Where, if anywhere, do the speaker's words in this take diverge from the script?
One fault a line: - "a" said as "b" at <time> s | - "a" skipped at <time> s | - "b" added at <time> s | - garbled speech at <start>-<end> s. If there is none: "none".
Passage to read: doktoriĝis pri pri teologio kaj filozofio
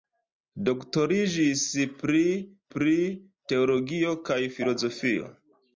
none